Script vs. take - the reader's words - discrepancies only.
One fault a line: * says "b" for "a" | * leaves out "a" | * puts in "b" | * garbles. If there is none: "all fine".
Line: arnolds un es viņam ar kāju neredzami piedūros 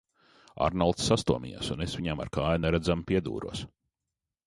* puts in "sastomījās"